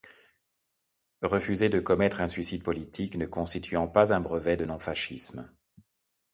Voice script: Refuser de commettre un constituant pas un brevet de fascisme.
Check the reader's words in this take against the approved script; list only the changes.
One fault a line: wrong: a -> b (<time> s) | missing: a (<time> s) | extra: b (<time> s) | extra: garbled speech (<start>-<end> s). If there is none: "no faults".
extra: suicide politique ne (2.3 s)
extra: non (4.6 s)